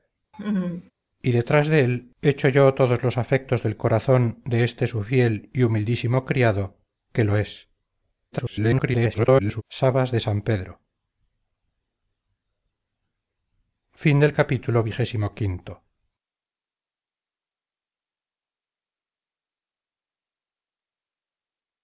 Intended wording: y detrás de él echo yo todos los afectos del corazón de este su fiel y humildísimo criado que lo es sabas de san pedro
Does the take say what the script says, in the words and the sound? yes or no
no